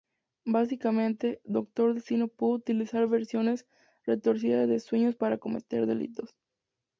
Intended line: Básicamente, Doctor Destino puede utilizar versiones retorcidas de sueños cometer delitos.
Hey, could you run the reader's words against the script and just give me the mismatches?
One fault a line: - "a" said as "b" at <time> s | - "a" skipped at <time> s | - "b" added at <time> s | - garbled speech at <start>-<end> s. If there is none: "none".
- "para" added at 5.2 s